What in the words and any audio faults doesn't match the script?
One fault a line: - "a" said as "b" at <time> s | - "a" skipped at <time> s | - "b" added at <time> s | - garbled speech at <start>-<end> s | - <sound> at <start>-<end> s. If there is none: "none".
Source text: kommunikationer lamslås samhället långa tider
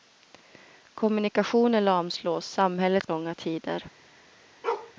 - bark at 4.6-4.9 s